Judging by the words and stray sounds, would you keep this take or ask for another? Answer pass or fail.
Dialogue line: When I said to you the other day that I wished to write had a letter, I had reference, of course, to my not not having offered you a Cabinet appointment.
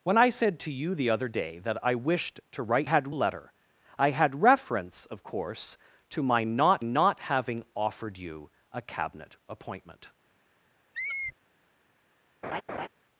fail